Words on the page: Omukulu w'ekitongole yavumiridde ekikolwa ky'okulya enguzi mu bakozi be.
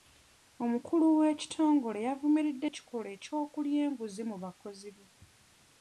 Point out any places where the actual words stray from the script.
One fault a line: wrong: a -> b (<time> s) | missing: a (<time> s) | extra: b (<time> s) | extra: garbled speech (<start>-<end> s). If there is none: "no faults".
no faults